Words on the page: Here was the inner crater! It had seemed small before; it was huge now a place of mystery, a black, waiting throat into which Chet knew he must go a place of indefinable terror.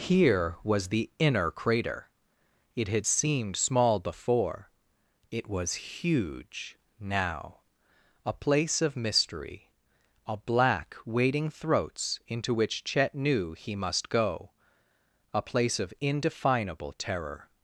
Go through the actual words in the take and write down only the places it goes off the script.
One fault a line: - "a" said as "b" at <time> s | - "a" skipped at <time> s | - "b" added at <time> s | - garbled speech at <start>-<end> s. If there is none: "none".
- "throat" said as "throats" at 11.5 s